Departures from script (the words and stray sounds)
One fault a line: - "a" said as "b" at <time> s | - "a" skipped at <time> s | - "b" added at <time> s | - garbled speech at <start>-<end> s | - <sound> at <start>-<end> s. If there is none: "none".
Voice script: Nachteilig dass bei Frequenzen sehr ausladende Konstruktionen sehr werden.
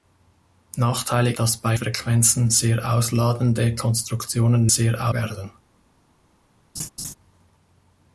- laugh at 6.8-7.1 s